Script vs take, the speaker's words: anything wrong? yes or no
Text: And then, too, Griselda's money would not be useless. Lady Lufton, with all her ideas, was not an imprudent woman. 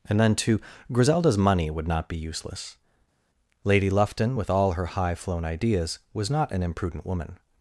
yes